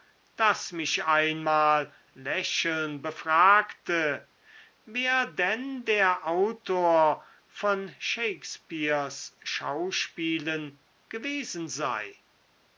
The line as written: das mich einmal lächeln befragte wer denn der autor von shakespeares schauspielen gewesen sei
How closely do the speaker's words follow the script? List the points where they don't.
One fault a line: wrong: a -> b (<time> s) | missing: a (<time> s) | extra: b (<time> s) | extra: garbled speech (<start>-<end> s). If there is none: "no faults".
no faults